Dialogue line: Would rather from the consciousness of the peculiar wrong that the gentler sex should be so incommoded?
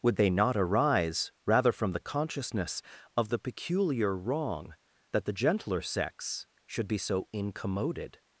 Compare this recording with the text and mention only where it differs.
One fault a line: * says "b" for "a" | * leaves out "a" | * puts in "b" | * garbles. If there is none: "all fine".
* puts in "they not arise"